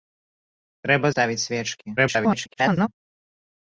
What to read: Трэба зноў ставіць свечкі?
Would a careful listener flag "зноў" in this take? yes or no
yes